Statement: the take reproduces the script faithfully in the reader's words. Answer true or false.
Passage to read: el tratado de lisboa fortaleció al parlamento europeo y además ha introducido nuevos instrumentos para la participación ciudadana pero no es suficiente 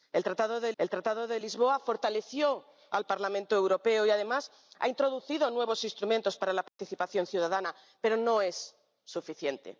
false